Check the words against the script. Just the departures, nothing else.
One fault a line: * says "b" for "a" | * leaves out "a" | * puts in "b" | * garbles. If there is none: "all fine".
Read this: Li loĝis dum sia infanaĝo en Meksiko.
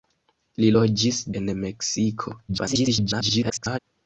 * leaves out "dum sia infanaĝo"
* garbles